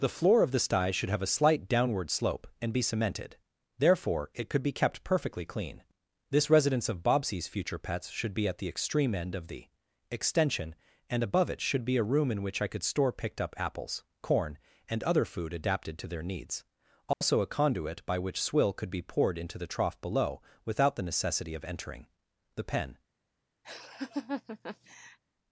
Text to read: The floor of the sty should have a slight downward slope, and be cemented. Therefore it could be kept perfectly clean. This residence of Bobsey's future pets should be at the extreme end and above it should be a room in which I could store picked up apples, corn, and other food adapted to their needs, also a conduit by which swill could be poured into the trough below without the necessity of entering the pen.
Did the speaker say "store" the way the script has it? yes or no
yes